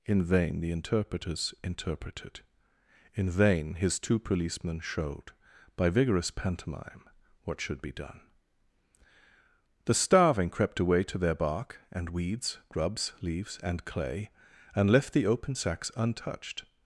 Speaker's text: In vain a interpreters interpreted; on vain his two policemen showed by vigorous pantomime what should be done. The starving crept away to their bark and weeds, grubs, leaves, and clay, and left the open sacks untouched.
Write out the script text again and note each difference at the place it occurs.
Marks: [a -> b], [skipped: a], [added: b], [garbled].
In vain [a -> the] interpreters interpreted; [on -> in] vain his two policemen showed by vigorous pantomime what should be done. The starving crept away to their bark and weeds, grubs, leaves, and clay, and left the open sacks untouched.